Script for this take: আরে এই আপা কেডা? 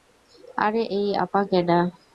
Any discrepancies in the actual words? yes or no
no